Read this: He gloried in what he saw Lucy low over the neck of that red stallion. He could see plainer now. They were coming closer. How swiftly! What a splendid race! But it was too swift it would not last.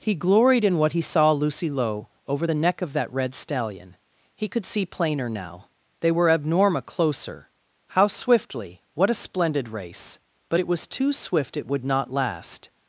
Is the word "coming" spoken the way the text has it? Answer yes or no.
no